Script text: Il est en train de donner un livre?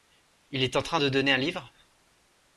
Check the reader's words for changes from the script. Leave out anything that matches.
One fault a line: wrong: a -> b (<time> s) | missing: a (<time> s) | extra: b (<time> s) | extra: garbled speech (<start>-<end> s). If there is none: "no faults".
no faults